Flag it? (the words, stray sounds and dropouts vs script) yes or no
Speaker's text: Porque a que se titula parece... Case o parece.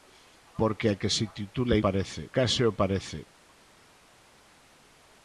no